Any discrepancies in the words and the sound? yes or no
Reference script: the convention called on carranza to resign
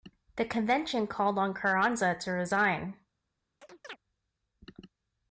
yes